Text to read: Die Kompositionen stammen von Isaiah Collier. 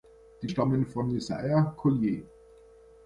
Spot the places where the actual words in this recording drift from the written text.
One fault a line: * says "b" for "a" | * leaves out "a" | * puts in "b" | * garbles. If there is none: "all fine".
* leaves out "Kompositionen"